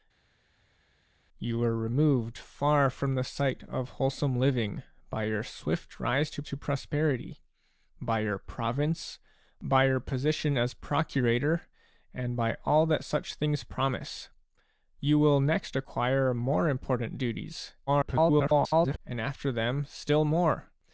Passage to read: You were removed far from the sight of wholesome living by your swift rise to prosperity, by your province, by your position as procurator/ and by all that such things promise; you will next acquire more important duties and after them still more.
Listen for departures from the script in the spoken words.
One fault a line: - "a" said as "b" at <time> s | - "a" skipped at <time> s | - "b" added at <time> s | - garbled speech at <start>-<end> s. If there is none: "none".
- "to" added at 6.4 s
- garbled speech at 17.9-19.0 s